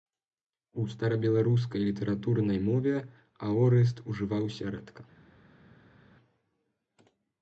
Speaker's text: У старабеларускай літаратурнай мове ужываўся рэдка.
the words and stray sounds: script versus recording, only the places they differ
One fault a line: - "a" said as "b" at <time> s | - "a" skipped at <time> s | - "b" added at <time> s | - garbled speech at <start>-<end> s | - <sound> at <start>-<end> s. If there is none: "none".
- "аорыст" added at 3.5 s